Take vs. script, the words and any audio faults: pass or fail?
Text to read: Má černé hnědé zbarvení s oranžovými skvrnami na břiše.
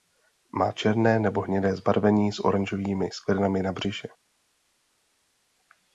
fail